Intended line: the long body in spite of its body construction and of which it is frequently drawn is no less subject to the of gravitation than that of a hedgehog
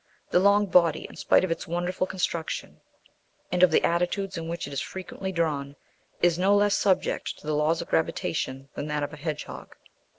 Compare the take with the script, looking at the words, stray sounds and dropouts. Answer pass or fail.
fail